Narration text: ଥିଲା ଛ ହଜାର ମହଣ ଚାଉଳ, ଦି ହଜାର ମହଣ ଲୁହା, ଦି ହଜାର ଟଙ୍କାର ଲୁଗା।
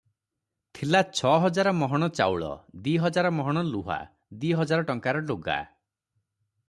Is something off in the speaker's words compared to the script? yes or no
no